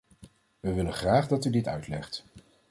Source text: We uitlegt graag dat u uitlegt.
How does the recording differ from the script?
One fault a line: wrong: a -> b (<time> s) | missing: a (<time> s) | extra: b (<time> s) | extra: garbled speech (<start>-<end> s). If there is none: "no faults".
wrong: uitlegt -> willen (0.7 s)
extra: dit (1.5 s)